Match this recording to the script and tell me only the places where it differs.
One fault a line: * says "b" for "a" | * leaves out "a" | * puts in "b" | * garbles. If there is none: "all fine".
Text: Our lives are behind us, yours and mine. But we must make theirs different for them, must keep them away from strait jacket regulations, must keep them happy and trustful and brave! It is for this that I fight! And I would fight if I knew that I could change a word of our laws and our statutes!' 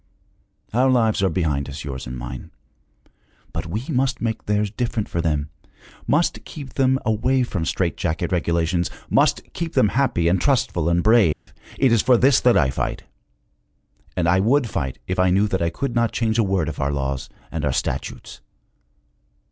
* puts in "not"